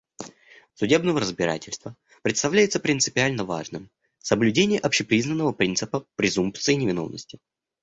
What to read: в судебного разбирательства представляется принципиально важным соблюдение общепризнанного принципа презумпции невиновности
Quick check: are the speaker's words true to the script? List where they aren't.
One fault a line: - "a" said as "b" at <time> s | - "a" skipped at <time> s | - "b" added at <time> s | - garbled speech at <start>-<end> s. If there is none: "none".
none